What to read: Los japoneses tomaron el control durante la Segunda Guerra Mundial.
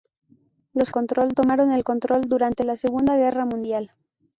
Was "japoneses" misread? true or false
true